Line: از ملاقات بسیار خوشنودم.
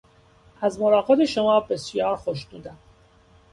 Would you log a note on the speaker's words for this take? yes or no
yes